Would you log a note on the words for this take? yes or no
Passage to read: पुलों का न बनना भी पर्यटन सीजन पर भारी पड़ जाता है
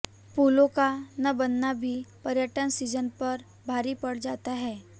no